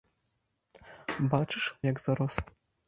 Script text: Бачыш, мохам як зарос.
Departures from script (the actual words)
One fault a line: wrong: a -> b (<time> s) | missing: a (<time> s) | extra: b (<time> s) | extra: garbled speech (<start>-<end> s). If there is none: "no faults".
missing: мохам (1.6 s)